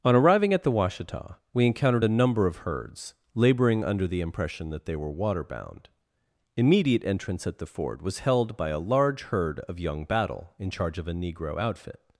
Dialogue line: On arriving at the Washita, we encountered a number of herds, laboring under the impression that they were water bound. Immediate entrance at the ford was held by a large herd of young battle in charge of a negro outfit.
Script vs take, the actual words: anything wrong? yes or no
no